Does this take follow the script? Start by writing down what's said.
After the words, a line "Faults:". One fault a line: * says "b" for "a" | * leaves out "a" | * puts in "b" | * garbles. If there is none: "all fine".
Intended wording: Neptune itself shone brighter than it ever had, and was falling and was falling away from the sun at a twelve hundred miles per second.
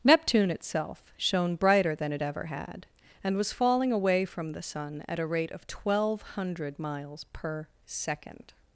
Neptune itself shone brighter than it ever had, and was falling away from the sun at a rate of twelve hundred miles per second.
Faults:
* leaves out "and was falling"
* puts in "rate of"